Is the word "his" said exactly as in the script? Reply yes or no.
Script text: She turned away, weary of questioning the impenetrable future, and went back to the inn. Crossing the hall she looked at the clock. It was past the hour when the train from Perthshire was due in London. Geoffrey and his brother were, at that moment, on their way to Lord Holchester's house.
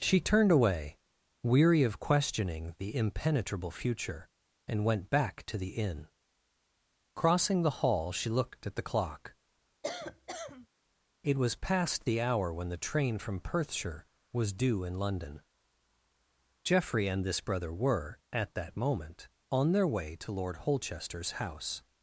no